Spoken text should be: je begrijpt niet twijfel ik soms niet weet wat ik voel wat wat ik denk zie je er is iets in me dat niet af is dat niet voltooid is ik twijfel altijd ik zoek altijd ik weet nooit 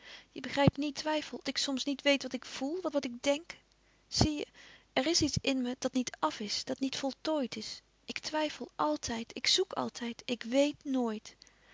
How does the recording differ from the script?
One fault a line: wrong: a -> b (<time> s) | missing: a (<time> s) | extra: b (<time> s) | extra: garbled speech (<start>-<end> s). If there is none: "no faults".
no faults